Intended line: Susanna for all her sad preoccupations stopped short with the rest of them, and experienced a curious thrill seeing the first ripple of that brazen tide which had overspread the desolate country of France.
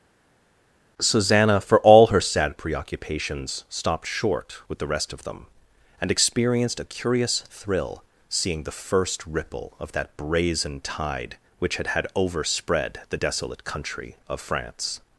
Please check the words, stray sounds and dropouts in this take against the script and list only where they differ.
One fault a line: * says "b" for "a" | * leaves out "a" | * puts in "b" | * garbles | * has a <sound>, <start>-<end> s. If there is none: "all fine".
* puts in "had"